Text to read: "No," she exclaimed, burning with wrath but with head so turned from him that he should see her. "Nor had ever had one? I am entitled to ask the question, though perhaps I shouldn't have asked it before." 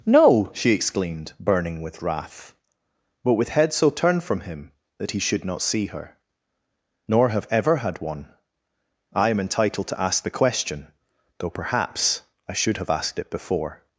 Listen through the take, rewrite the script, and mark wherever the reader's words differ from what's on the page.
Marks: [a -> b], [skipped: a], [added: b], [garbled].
"No," she exclaimed, burning with wrath but with head so turned from him that he should [added: not] see her. "Nor [had -> have] ever had one? I am entitled to ask the question, though perhaps I [shouldn't -> should] have asked it before."